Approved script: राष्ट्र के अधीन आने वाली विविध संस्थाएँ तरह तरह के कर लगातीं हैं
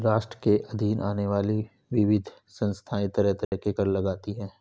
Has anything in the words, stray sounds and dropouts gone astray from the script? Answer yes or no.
yes